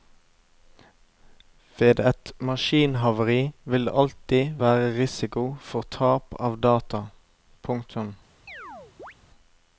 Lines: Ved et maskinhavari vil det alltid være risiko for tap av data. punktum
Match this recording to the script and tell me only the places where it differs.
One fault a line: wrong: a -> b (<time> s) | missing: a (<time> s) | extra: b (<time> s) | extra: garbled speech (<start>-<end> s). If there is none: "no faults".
no faults